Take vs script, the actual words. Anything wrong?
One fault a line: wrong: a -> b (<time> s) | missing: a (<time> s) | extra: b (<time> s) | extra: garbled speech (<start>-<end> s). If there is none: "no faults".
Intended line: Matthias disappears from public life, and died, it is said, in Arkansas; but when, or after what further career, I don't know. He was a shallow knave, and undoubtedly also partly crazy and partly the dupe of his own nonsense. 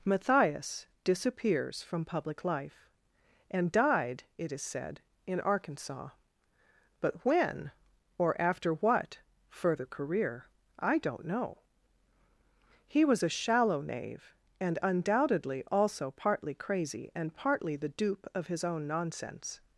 no faults